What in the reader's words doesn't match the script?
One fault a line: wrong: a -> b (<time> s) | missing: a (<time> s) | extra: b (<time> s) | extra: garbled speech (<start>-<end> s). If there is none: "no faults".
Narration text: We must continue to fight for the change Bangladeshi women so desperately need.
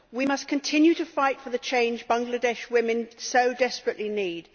no faults